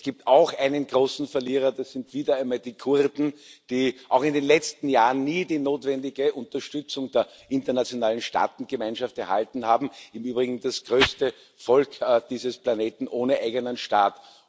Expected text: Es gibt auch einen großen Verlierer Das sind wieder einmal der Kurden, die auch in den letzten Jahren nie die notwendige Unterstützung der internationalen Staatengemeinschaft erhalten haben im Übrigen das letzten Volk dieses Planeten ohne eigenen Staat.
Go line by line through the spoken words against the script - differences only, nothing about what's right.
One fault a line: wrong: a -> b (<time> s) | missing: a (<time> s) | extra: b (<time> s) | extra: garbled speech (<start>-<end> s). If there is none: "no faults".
wrong: der -> die (2.6 s)
wrong: letzten -> größte (10.8 s)